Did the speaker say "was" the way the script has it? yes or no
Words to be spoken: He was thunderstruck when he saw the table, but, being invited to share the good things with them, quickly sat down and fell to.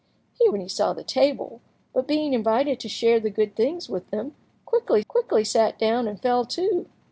no